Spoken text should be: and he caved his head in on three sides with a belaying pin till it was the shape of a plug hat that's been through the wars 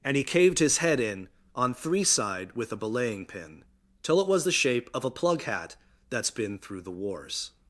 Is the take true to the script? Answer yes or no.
no